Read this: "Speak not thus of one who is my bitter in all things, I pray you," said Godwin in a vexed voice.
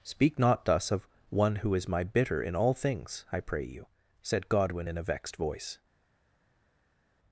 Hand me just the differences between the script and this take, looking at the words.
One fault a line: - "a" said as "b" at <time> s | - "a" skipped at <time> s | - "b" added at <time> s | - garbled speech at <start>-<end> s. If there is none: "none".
none